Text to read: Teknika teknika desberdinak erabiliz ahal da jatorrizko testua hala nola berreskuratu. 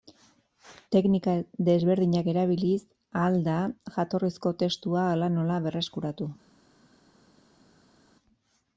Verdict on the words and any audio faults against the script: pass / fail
fail